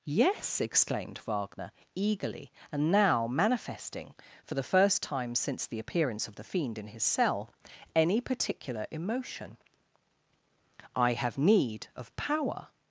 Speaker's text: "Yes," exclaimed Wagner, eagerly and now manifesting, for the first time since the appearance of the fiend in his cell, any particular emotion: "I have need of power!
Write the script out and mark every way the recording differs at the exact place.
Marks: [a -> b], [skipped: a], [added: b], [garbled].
"Yes," exclaimed Wagner, eagerly and now manifesting, for the first time since the appearance of the fiend in his cell, any particular emotion: "I have need of power!